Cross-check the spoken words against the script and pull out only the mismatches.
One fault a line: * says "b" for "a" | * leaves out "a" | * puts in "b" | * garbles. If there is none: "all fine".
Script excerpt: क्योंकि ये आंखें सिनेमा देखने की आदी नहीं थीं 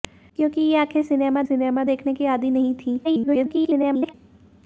* puts in "सिनेमा"
* garbles